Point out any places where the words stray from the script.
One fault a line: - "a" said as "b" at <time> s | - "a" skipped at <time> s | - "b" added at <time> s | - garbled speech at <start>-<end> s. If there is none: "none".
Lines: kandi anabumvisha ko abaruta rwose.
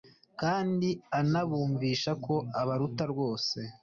none